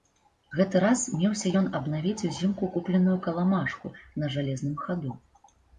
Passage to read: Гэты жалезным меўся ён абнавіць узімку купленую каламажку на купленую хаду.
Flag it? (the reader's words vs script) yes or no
yes